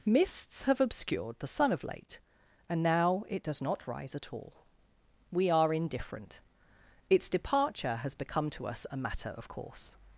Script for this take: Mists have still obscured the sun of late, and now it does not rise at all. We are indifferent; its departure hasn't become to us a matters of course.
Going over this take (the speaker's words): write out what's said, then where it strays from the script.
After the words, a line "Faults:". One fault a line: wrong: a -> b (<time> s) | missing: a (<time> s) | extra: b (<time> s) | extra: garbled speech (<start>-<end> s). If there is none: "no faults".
Mists have obscured the sun of late, and now it does not rise at all. We are indifferent; its departure has become to us a matter of course.
Faults:
missing: still (0.8 s)
wrong: hasn't -> has (8.0 s)
wrong: matters -> matter (9.0 s)